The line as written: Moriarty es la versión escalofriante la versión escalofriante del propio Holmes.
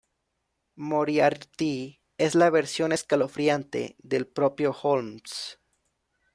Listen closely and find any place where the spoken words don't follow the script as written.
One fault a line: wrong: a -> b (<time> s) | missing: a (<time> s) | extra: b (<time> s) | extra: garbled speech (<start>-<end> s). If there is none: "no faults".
missing: la versión escalofriante (4.0 s)